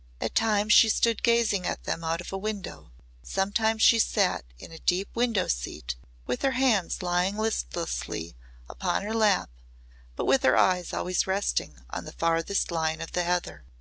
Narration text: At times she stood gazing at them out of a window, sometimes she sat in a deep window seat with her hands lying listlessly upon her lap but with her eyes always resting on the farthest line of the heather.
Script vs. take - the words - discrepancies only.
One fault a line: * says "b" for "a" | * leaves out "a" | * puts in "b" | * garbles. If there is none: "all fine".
all fine